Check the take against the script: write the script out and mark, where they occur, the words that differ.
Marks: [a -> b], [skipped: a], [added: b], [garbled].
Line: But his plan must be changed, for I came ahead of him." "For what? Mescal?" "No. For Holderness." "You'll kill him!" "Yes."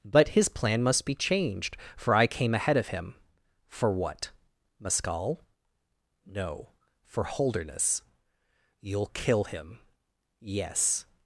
But his plan must be changed, for I came ahead of him." "For what? Mescal?" "No. For Holderness." "You'll kill him!" "Yes."